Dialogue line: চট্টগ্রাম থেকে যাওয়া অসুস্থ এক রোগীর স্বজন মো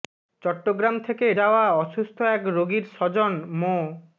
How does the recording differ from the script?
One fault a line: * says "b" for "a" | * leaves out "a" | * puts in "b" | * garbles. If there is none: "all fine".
all fine